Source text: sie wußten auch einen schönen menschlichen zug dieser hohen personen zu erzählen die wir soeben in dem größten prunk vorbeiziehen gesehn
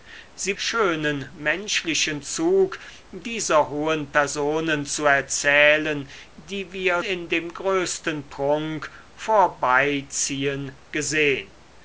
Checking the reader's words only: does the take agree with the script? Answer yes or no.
no